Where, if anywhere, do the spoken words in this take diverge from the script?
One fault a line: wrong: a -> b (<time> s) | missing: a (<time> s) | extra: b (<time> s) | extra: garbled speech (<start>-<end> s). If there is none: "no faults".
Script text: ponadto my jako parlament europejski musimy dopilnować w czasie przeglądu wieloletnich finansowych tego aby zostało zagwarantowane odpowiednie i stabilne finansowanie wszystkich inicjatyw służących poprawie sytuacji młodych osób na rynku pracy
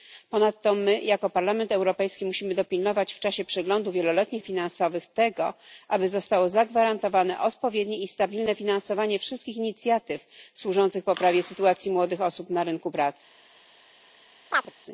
no faults